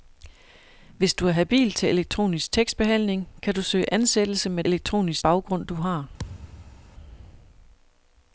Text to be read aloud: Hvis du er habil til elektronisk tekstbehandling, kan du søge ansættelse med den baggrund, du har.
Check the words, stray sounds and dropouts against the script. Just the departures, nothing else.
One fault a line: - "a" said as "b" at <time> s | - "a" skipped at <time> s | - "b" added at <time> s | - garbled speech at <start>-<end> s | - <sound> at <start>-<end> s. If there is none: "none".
- "den" said as "elektronisk" at 4.6 s
- thud at 6.2-6.9 s